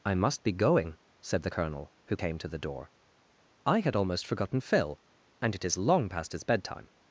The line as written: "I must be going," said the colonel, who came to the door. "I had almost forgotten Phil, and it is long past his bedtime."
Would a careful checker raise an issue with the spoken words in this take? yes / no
no